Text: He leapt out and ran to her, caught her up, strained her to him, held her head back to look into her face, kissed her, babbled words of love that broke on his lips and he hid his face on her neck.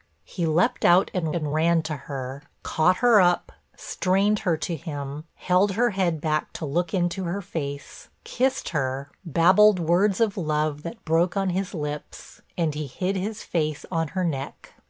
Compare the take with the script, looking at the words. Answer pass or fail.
fail